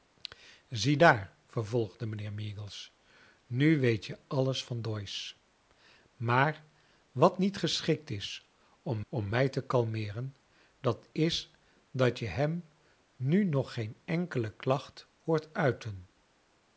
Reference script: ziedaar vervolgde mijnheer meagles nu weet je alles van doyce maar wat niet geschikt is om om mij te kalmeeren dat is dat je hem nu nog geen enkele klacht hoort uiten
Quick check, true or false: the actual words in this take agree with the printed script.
true